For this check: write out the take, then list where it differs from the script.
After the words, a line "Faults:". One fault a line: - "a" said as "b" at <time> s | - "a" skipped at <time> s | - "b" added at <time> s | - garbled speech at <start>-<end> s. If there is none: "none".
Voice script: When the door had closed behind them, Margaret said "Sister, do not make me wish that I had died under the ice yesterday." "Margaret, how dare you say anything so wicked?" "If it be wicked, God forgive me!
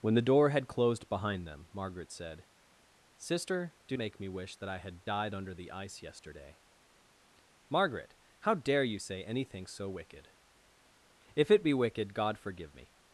When the door had closed behind them, Margaret said "Sister, do make me wish that I had died under the ice yesterday." "Margaret, how dare you say anything so wicked?" "If it be wicked, God forgive me!
Faults:
- "not" skipped at 4.0 s